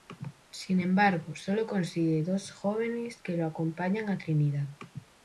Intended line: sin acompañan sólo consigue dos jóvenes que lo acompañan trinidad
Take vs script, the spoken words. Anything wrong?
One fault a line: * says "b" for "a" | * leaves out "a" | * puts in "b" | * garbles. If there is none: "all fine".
* says "embargo" for "acompañan"
* puts in "a"